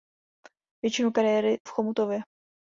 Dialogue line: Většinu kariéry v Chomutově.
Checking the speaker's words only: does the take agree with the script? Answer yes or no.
yes